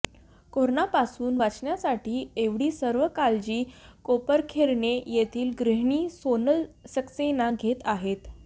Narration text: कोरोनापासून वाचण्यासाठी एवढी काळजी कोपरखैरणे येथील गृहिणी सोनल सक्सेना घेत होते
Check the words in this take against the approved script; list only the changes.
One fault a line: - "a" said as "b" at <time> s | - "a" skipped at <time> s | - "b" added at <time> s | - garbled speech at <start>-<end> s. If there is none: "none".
- "सर्व" added at 2.7 s
- "होते" said as "आहेत" at 7.9 s